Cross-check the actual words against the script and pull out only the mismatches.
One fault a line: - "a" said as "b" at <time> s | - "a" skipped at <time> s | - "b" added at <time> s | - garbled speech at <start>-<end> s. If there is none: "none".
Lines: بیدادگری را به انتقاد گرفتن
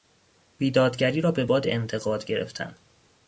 - "باد" added at 1.4 s